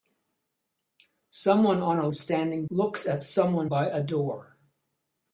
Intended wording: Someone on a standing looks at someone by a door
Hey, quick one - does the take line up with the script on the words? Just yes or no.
yes